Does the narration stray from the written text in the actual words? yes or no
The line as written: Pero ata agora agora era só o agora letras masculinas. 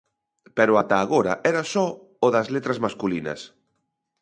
yes